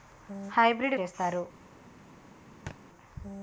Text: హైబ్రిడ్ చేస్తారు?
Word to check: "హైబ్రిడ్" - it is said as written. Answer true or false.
true